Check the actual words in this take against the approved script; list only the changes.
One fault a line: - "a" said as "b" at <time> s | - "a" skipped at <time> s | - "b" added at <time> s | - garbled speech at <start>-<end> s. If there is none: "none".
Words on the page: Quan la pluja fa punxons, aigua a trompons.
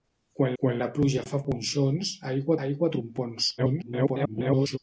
- "quan" added at 0.6 s
- "aigua" added at 2.7 s
- garbled speech at 3.6-4.8 s